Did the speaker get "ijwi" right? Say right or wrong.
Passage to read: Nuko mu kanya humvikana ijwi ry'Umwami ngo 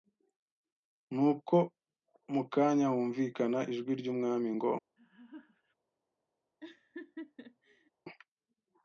right